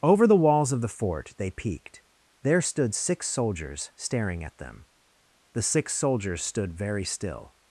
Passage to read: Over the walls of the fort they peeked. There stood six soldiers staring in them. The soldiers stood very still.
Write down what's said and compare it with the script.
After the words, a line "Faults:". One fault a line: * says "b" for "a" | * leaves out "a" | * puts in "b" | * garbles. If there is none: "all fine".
Over the walls of the fort they peeked. There stood six soldiers staring at them. The six soldiers stood very still.
Faults:
* says "at" for "in"
* puts in "six"